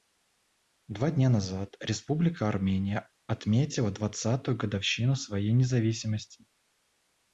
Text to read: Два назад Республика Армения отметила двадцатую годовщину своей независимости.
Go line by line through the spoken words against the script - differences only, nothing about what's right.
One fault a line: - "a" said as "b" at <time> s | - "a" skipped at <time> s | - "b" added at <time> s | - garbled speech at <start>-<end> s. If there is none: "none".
- "дня" added at 1.1 s